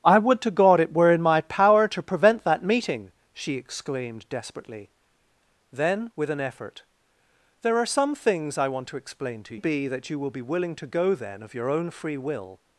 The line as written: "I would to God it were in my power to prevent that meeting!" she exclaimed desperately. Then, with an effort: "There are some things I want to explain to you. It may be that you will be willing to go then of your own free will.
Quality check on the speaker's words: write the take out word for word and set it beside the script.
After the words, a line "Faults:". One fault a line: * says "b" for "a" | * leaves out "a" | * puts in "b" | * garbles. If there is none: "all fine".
"I would to God it were in my power to prevent that meeting!" she exclaimed desperately. Then, with an effort: "There are some things I want to explain to be that you will be willing to go then of your own free will.
Faults:
* leaves out "you It may"